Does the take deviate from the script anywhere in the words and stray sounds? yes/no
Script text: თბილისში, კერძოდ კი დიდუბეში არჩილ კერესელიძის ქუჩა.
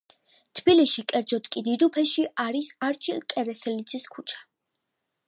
yes